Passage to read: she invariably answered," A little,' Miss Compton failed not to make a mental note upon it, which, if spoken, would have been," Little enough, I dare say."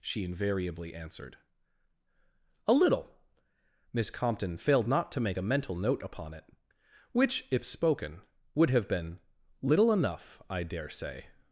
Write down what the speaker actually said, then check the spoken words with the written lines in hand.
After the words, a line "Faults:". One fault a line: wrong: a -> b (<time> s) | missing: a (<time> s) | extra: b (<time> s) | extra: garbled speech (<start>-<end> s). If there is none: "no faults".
she invariably answered," A little,' Miss Compton failed not to make a mental note upon it, which, if spoken, would have been," Little enough, I dare say."
Faults:
no faults